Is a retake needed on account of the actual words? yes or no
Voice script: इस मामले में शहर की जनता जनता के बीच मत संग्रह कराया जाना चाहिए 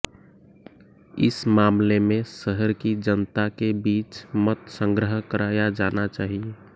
yes